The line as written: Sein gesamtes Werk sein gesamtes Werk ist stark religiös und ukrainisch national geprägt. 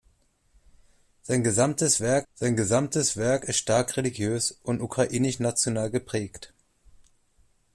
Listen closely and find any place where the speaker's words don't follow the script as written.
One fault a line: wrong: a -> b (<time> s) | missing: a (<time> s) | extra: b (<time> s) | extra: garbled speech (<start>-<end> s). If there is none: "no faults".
no faults